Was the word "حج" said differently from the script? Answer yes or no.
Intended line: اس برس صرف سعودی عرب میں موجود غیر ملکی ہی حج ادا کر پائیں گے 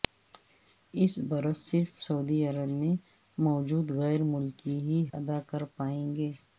yes